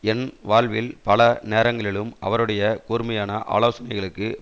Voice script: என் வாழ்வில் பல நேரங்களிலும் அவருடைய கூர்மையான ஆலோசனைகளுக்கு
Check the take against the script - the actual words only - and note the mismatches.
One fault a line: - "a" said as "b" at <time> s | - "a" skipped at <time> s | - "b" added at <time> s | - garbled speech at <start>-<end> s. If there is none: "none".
none